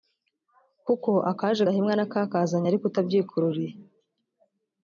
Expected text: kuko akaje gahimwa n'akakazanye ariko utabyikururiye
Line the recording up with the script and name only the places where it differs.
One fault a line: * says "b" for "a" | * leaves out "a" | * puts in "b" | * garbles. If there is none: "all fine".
all fine